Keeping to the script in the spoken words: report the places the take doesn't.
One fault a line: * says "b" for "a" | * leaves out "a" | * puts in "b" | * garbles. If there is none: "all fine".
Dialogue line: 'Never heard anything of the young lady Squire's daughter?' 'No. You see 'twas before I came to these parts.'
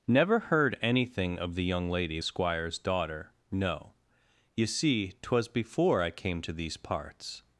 all fine